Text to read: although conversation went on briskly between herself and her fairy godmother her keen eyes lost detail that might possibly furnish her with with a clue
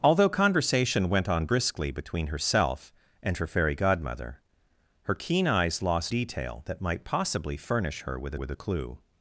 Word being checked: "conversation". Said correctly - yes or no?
yes